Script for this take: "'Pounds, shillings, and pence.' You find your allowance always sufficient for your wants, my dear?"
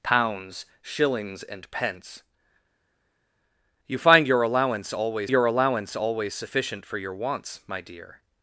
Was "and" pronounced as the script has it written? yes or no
yes